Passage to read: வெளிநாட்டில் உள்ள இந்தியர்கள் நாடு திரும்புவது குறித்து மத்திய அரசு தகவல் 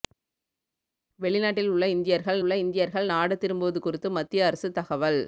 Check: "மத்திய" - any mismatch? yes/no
no